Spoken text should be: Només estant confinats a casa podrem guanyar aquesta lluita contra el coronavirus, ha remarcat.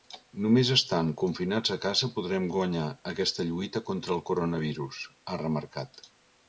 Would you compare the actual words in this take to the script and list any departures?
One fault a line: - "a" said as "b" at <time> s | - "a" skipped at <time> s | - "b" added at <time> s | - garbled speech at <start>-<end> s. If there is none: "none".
none